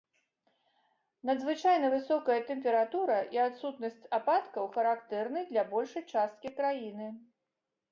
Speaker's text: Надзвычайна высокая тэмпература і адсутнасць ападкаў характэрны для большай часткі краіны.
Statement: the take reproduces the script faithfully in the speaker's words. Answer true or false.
true